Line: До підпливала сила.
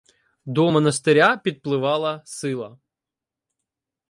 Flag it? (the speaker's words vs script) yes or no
yes